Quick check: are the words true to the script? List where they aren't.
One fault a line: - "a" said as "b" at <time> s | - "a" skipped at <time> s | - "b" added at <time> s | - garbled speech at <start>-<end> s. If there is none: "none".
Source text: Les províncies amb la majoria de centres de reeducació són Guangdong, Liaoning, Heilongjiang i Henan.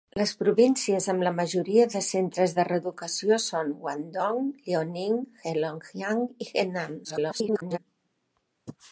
- garbled speech at 7.0-7.8 s